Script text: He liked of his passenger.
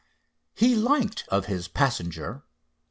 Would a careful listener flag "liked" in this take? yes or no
no